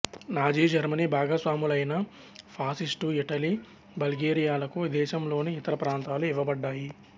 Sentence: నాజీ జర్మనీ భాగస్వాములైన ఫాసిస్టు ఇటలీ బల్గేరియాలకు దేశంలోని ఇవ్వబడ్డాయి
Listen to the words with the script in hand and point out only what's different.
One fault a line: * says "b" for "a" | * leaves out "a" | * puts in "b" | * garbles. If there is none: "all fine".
* puts in "ఇతర ప్రాంతాలు"